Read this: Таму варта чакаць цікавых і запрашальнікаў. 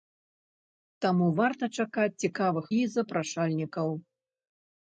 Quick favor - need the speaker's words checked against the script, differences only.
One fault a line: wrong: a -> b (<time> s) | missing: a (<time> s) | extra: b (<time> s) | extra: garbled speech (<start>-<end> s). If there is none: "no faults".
no faults